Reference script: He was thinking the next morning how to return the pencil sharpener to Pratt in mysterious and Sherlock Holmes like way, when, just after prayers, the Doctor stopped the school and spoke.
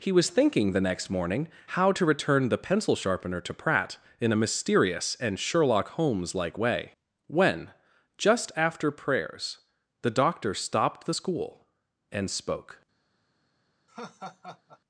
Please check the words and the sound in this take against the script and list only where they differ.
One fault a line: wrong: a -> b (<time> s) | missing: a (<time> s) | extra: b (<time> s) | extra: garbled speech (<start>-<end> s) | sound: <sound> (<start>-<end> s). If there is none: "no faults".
extra: a (4.3 s)
sound: laugh (13.9-14.8 s)